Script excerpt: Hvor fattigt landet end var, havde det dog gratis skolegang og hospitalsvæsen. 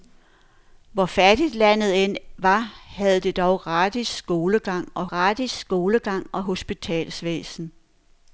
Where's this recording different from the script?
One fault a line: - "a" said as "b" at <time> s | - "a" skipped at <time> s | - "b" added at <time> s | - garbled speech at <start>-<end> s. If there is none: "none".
- "gratis skolegang og" added at 5.1 s